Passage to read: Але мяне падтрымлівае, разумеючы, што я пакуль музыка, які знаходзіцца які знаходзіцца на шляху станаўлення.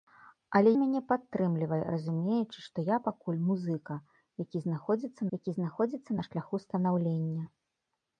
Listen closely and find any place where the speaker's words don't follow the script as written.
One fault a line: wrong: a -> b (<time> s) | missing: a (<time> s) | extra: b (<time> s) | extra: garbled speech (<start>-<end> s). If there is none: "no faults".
no faults